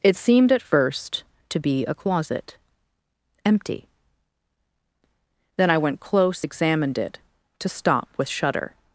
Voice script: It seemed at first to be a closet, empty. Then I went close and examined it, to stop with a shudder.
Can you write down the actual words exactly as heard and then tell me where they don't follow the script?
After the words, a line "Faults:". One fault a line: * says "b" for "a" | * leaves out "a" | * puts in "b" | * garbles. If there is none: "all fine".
It seemed at first to be a closet, empty. Then I went close examined it, to stop with shudder.
Faults:
* leaves out "and"
* leaves out "a"